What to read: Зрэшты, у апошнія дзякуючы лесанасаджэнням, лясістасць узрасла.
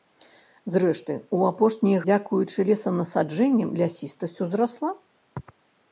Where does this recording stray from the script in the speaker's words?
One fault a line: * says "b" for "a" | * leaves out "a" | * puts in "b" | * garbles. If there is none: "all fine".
all fine